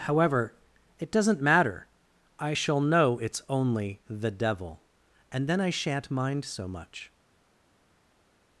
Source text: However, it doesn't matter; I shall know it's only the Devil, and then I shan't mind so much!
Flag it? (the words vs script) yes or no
no